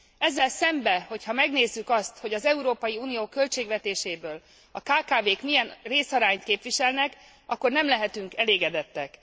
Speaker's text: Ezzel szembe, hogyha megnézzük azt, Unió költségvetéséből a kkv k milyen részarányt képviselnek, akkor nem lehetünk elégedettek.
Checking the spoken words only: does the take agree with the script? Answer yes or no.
no